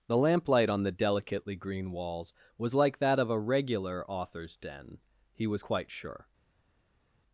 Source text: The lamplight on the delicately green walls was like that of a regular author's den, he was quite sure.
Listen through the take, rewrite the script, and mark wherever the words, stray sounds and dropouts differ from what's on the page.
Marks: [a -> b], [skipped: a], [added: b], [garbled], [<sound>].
The lamplight on the delicately green walls was like that of a regular author's den, he was quite sure.